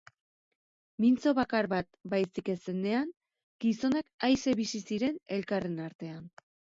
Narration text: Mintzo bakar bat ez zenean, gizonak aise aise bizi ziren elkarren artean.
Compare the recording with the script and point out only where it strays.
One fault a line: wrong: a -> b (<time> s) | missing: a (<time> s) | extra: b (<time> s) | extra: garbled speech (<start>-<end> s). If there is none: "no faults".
extra: baizik (2.1 s)
missing: aise (4.5 s)